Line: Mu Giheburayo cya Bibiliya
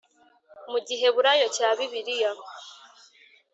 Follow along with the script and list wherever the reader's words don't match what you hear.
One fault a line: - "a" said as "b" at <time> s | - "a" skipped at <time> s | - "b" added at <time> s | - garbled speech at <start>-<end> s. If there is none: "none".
none